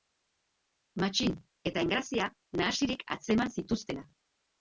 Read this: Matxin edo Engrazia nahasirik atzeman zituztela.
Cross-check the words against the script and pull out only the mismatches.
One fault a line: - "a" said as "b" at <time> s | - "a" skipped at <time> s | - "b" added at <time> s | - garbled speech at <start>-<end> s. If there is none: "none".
- "edo" said as "eta" at 1.7 s